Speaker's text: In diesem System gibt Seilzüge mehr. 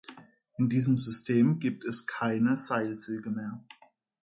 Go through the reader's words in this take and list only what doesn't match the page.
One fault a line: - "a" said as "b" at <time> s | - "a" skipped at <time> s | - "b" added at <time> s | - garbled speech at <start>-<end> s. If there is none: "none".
- "es keine" added at 1.9 s